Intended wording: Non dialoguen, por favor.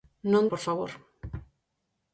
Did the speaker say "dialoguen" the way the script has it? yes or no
no